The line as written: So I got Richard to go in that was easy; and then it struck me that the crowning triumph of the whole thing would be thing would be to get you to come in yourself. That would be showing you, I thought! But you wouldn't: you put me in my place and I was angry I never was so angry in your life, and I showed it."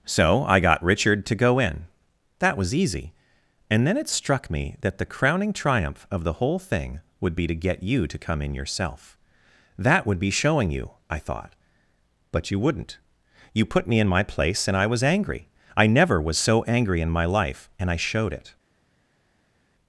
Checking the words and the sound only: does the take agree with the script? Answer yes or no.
no